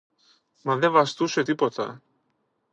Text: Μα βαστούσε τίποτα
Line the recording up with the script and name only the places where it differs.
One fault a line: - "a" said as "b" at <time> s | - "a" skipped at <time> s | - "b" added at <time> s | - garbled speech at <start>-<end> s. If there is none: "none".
- "δε" added at 0.8 s